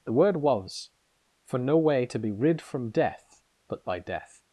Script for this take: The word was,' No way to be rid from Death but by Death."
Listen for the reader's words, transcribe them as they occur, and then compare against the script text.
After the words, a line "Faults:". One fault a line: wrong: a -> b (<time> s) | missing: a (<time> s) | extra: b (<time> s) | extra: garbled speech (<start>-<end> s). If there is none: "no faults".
The word was,' for No way to be rid from Death but by Death."
Faults:
extra: for (1.4 s)